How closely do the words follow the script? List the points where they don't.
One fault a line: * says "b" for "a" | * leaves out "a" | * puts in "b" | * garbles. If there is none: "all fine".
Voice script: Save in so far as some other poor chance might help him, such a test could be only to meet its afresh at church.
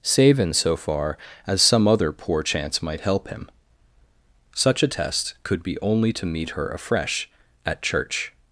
* says "her" for "its"